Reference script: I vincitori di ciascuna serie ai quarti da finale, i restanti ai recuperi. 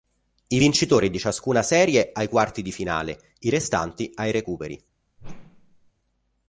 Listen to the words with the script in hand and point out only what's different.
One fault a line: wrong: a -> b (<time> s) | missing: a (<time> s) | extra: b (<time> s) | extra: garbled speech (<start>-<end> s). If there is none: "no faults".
wrong: da -> di (2.6 s)